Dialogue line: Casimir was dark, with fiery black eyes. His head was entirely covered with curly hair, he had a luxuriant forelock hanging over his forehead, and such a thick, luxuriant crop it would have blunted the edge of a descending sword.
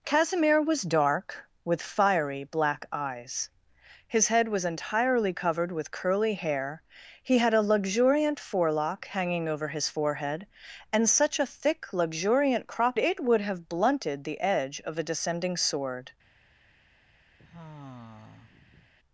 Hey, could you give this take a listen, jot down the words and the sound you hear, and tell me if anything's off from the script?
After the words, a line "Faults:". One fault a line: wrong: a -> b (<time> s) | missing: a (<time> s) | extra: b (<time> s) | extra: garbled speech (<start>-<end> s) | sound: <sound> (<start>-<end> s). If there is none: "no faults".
Casimir was dark, with fiery black eyes. His head was entirely covered with curly hair, he had a luxuriant forelock hanging over his forehead, and such a thick, luxuriant crop it would have blunted the edge of a descending sword.
Faults:
sound: sigh (17.4-18.9 s)